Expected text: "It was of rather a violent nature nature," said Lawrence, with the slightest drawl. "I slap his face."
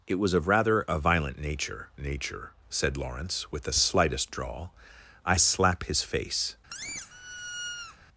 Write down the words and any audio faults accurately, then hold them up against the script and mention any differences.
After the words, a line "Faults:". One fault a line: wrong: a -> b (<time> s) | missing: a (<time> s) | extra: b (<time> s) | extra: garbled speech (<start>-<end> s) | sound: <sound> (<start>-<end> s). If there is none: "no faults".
"It was of rather a violent nature nature," said Lawrence, with the slightest drawl. "I slap his face."
Faults:
sound: squeak (6.7-8.0 s)